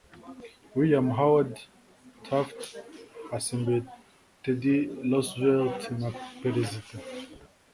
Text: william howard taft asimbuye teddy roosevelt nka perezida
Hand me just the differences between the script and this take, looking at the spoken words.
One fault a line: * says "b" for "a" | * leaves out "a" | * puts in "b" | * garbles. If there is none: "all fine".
all fine